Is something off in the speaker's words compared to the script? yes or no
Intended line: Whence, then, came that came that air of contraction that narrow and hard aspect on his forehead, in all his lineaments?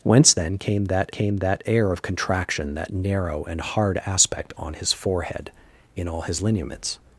no